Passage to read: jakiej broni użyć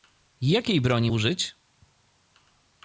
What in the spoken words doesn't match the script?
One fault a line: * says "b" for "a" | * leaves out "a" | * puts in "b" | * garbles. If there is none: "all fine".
all fine